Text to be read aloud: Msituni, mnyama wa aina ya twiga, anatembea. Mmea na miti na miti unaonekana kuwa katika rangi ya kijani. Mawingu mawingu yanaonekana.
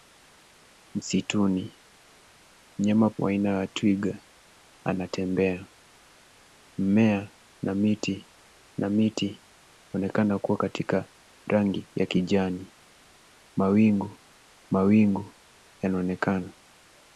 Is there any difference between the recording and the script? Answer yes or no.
no